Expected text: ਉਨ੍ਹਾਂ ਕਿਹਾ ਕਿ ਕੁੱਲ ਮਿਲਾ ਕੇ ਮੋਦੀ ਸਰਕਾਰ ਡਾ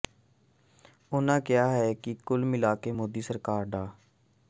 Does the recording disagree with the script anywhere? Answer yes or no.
no